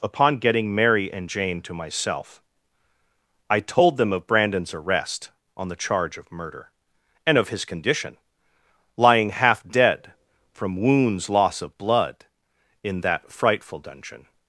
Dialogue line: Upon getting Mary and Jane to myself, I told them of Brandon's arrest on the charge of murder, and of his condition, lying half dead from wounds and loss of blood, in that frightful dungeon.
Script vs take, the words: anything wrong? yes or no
yes